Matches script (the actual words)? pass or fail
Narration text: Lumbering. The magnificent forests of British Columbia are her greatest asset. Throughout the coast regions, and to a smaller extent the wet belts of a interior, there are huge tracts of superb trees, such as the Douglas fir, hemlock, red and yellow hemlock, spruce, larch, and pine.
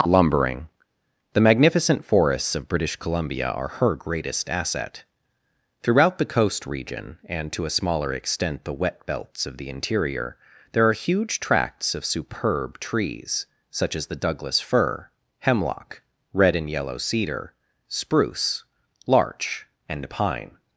fail